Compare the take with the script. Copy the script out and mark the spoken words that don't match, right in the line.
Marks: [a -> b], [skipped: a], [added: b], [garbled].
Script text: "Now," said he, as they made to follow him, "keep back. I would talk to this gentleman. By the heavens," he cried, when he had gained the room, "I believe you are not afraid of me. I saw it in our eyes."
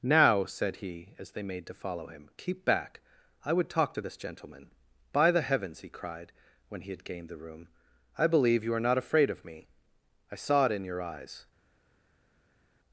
"Now," said he, as they made to follow him, "keep back. I would talk to this gentleman. By the heavens," he cried, when he had gained the room, "I believe you are not afraid of me. I saw it in [our -> your] eyes."